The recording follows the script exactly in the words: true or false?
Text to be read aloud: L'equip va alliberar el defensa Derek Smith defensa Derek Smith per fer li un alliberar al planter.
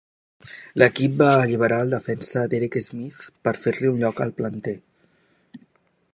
false